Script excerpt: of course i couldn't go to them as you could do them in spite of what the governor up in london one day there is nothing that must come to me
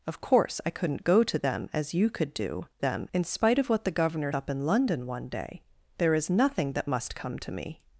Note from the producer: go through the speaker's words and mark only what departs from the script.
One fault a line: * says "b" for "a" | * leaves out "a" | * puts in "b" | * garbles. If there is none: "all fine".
all fine